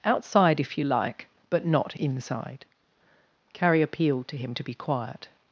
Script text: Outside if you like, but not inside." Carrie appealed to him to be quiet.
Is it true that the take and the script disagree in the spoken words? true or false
false